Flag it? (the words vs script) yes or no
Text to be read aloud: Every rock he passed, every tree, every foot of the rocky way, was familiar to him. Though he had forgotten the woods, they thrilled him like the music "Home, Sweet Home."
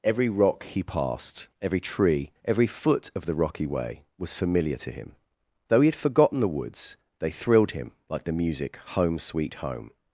no